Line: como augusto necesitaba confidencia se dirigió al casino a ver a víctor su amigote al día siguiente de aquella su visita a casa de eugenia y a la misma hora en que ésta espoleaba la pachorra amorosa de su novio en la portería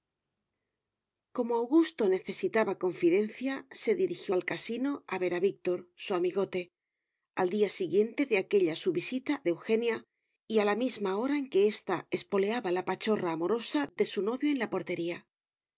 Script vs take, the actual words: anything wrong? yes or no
yes